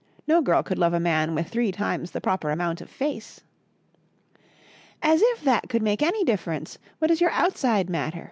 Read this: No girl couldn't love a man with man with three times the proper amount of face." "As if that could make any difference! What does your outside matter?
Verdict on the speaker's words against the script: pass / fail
fail